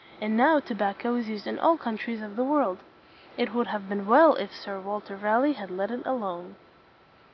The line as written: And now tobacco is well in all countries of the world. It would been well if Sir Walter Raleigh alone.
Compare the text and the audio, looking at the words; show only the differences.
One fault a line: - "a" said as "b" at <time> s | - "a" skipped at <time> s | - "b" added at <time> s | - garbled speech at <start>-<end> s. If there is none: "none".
- "well" said as "used" at 1.3 s
- "have" added at 3.7 s
- "had let it" added at 5.5 s